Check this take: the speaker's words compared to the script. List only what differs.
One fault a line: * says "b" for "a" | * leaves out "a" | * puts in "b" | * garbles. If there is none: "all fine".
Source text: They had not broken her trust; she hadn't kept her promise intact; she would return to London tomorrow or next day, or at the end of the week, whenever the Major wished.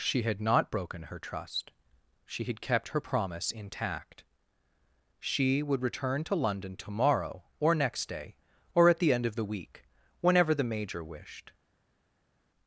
* says "She" for "They"
* says "had" for "hadn't"